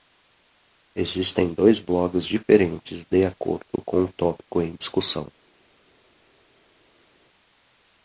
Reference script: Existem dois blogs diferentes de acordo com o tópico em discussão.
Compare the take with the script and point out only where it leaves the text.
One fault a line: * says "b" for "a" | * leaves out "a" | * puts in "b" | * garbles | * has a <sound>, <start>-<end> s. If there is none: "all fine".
all fine